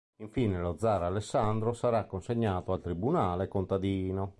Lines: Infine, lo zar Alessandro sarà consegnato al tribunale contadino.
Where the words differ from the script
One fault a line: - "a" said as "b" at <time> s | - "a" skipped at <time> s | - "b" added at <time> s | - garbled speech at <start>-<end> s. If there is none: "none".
none